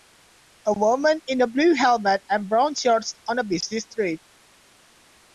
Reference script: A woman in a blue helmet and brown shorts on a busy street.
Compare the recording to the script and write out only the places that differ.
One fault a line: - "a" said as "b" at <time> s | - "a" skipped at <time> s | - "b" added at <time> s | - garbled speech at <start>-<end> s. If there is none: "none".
none